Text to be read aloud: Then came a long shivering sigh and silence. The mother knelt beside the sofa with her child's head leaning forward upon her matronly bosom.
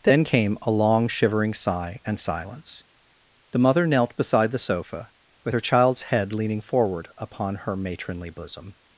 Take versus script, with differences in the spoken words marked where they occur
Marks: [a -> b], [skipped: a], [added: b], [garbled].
Then came a long shivering sigh and silence. The mother knelt beside the sofa with her child's head leaning forward upon her matronly bosom.